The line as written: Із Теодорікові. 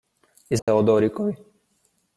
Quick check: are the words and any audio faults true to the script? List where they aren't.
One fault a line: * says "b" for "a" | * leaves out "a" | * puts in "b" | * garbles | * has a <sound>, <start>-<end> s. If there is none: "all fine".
* has a dropout, 0.6-0.7 s